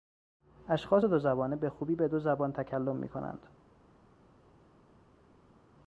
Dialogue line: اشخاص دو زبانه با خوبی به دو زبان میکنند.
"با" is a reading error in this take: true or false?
true